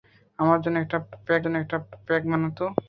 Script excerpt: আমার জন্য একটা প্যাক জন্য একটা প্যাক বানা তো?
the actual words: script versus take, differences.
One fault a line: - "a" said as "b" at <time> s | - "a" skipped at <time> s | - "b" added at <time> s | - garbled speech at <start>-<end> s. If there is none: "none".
none